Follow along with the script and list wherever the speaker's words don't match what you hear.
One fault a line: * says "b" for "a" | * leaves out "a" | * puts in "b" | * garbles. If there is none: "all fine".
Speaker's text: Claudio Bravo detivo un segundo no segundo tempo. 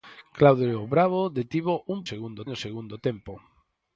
all fine